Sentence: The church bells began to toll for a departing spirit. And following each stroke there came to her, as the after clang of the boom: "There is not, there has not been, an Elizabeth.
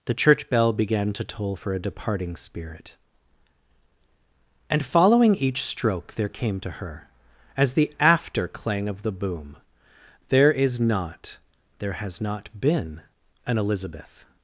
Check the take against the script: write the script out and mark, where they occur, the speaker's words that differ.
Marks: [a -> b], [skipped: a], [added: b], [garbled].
The church [bells -> bell] began to toll for a departing spirit. And following each stroke there came to her, as the after clang of the boom: "There is not, there has not been, an Elizabeth.